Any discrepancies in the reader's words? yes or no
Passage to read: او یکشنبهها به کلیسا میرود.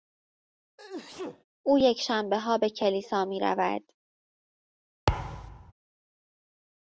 no